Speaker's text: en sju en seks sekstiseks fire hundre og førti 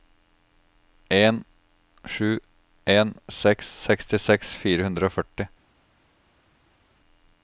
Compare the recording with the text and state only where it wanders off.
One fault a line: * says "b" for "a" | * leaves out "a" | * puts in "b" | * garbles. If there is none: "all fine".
all fine